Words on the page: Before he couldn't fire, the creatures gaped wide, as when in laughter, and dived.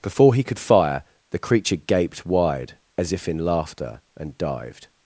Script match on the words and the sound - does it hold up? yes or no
no